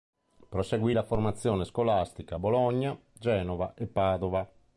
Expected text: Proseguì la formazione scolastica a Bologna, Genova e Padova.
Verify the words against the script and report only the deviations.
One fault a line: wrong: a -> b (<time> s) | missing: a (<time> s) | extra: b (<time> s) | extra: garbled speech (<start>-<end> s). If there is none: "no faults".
no faults